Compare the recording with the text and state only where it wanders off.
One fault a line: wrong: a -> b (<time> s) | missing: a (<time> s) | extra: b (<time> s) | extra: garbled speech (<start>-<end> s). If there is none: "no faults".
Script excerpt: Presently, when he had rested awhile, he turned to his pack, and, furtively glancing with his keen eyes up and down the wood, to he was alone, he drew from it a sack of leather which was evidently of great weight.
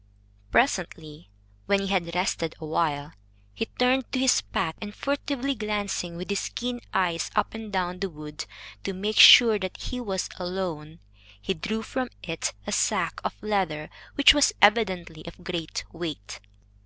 extra: make sure that (8.9 s)